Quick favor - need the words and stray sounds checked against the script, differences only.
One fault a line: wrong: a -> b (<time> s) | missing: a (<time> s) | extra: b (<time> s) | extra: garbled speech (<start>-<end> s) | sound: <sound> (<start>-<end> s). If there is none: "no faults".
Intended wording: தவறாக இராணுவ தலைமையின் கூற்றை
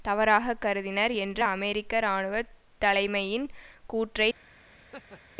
extra: கருதினர் என்ற அமெரிக்க (0.6 s)
sound: laugh (4.8-5.4 s)